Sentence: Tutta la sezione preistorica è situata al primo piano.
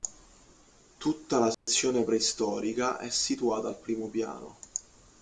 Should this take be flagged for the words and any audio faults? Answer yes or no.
yes